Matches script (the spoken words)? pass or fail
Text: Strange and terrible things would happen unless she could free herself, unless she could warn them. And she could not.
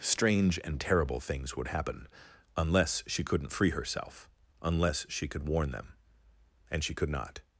fail